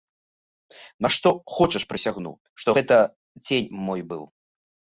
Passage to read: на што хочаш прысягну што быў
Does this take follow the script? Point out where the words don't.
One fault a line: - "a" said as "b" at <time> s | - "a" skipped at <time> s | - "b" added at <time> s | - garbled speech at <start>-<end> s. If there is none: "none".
- "гэта цень мой" added at 2.8 s